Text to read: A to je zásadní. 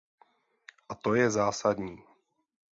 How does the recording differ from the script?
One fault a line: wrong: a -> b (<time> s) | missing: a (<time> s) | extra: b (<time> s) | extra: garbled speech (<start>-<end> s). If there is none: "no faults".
no faults